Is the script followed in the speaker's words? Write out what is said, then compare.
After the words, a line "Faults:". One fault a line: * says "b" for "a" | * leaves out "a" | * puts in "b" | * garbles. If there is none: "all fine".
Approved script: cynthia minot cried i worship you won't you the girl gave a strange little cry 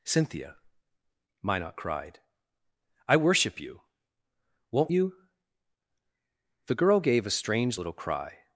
cynthia minot cried i worship you won't you the girl gave a strange little cry
Faults:
all fine